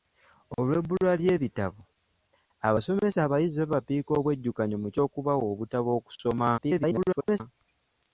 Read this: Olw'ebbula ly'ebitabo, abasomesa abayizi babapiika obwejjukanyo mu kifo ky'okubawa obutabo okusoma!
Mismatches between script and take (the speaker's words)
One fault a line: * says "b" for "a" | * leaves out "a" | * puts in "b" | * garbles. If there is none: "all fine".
* leaves out "kifo"
* garbles